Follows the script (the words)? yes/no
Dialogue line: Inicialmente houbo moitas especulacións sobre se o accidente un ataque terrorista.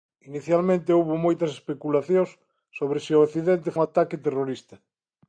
yes